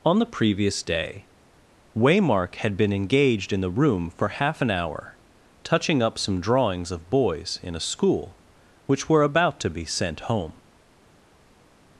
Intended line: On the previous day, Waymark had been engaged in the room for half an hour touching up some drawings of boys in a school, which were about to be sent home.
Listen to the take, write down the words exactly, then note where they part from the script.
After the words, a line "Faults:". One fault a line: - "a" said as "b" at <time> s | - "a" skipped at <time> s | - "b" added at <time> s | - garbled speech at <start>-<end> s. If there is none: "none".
On the previous day, Waymark had been engaged in the room for half an hour touching up some drawings of boys in a school, which were about to be sent home.
Faults:
none